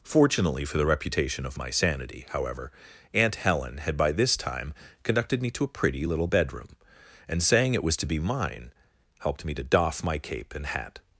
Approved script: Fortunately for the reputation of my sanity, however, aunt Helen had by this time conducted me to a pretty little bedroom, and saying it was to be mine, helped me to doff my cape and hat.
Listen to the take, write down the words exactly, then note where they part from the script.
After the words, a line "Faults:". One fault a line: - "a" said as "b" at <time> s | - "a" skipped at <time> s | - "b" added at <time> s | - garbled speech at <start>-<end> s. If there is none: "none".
Fortunately for the reputation of my sanity, however, aunt Helen had by this time conducted me to a pretty little bedroom, and saying it was to be mine, helped me to doff my cape and hat.
Faults:
none